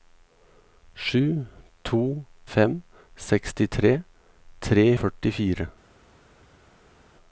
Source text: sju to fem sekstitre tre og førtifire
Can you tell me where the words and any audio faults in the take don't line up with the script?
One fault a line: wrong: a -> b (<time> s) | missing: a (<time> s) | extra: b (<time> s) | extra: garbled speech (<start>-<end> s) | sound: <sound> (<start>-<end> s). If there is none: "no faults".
no faults